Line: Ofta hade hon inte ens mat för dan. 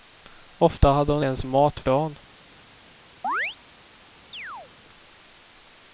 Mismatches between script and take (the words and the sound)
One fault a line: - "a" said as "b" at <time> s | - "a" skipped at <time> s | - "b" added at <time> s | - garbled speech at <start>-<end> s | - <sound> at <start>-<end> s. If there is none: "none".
- "inte" skipped at 1.2 s
- "för" skipped at 1.8 s
- chirp at 3.2-3.6 s
- chirp at 4.3-4.7 s